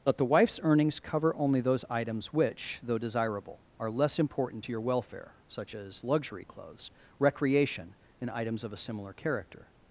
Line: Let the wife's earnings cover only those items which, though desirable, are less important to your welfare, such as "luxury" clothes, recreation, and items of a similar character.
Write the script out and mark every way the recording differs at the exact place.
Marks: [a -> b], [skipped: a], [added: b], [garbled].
Let the wife's earnings cover only those items which, though desirable, are less important to your welfare, such as "luxury" clothes, recreation, and items of a similar character.